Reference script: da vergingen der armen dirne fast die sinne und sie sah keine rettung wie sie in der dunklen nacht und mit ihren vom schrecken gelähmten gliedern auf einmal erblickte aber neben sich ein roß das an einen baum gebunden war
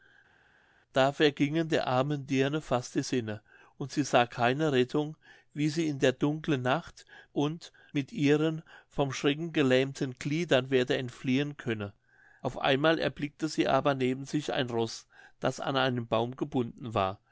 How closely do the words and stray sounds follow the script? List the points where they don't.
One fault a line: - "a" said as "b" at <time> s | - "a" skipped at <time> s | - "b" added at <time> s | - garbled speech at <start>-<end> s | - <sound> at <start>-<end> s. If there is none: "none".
- "werde entfliehen könne" added at 10.7 s
- "sie" added at 13.5 s